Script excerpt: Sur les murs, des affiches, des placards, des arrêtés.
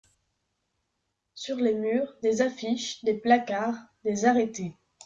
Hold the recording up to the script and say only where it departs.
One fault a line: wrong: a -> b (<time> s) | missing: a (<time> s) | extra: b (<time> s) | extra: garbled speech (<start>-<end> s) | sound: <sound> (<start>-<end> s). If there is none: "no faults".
no faults